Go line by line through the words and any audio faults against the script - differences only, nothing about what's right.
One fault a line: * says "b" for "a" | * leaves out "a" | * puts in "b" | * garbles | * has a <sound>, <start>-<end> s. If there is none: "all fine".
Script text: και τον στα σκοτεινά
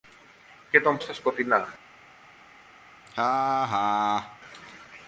* has a laugh, 3.1-4.4 s